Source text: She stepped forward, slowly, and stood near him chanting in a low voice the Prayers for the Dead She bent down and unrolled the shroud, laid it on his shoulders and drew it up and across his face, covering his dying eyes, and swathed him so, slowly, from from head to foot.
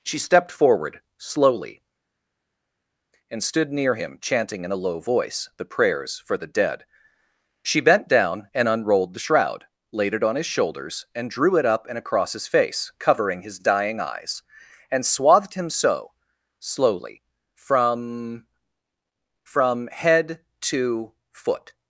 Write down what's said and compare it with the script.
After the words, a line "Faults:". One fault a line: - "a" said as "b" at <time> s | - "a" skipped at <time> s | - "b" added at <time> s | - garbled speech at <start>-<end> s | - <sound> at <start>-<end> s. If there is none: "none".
She stepped forward, slowly, and stood near him chanting in a low voice the Prayers for the Dead She bent down and unrolled the shroud, laid it on his shoulders and drew it up and across his face, covering his dying eyes, and swathed him so, slowly, from from head to foot.
Faults:
none